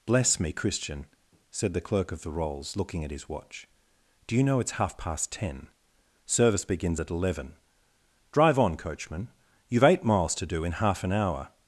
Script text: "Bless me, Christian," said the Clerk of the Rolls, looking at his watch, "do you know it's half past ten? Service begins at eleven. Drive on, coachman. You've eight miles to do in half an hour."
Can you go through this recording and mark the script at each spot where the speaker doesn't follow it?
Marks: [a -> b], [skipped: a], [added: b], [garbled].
"Bless me, Christian," said the Clerk of the Rolls, looking at his watch, "do you know it's half past ten? Service begins at eleven. Drive on, coachman. You've eight miles to do in half an hour."